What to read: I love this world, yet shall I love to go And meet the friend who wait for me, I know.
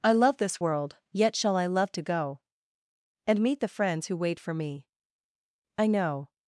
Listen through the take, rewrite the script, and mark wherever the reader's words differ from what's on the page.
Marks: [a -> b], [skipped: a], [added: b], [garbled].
I love this world, yet shall I love to go And meet the [friend -> friends] who wait for me, I know.